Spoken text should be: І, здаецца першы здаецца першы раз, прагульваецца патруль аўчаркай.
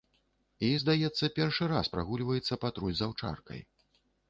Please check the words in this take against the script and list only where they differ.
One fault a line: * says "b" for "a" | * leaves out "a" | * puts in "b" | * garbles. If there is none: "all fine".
* leaves out "здаецца першы"
* puts in "з"